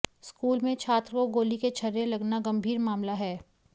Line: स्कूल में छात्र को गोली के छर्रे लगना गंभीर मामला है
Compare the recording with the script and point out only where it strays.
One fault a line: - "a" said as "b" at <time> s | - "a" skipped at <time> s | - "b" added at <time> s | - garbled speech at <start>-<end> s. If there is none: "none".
none